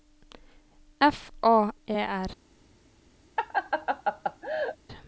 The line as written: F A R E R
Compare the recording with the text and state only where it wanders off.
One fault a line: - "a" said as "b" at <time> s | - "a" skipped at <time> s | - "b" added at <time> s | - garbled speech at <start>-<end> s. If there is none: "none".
- "R" skipped at 1.7 s